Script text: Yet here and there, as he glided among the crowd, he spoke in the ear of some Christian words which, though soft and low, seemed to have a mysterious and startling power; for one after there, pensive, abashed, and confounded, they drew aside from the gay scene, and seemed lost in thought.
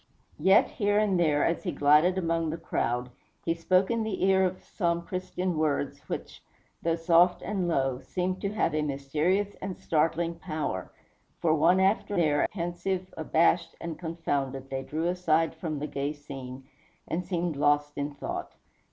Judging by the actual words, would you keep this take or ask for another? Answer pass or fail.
pass